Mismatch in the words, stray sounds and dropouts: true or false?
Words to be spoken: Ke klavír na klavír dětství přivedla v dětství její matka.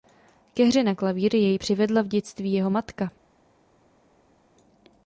true